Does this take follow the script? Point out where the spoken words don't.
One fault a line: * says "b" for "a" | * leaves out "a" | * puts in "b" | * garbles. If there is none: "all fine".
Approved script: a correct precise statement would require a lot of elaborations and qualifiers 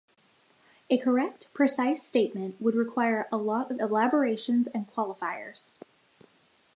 all fine